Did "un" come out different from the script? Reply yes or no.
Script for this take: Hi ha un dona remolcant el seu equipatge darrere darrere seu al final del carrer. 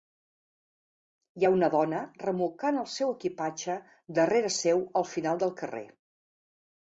yes